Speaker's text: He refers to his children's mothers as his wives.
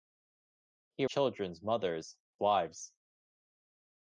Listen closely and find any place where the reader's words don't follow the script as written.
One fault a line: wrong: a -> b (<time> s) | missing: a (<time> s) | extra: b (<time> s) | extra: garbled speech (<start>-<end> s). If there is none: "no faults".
missing: refers to his (1.1 s)
missing: as his (2.2 s)